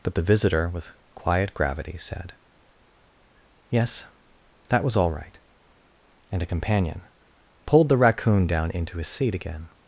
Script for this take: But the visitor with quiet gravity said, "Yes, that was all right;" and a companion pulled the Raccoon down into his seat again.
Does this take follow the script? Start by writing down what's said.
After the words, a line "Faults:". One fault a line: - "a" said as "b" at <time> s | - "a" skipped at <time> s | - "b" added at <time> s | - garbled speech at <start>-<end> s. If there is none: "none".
But the visitor with quiet gravity said, "Yes, that was all right;" and a companion pulled the Raccoon down into his seat again.
Faults:
none